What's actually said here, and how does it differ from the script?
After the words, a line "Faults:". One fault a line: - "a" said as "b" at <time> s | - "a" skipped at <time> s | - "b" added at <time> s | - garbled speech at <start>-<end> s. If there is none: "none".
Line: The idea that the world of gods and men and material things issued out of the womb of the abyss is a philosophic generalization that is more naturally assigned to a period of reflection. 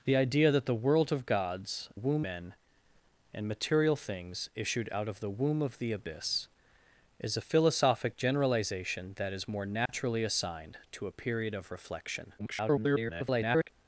The idea that the world of gods womb men and material things issued out of the womb of the abyss is a philosophic generalization that is more naturally assigned to a period of reflection. [garbled]
Faults:
- "and" said as "womb" at 1.9 s
- garbled speech at 12.4-13.7 s